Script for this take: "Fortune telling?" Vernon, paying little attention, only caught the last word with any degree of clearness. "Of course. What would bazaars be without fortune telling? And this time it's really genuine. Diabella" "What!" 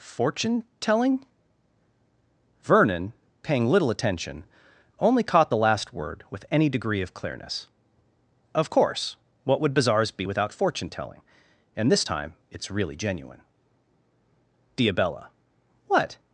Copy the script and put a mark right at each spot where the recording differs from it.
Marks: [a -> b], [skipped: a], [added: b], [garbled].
"Fortune telling?" Vernon, paying little attention, only caught the last word with any degree of clearness. "Of course. What would bazaars be without fortune telling? And this time it's really genuine. Diabella" "What!"